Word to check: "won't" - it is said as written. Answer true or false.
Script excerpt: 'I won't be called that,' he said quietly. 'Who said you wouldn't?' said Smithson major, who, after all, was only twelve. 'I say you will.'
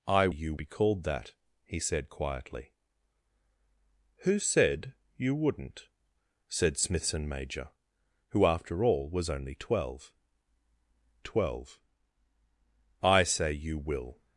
false